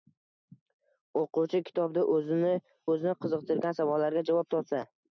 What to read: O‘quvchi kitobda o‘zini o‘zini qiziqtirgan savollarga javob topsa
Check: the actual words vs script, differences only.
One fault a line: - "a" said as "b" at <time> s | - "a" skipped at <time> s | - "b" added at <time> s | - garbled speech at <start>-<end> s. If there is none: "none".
none